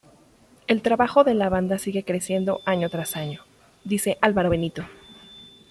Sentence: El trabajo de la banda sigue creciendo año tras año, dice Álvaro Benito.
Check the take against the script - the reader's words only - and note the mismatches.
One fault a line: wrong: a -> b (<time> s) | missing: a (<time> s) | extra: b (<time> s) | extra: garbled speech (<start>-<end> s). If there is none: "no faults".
no faults